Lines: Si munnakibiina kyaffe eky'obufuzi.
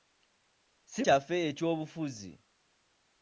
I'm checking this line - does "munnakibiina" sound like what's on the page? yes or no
no